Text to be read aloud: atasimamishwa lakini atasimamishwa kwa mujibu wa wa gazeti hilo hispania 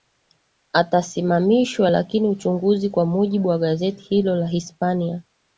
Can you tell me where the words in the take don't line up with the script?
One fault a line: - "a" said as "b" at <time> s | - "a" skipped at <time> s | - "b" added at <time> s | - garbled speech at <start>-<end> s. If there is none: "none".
- "atasimamishwa" said as "uchunguzi" at 2.3 s
- "wa" skipped at 3.6 s
- "la" added at 4.3 s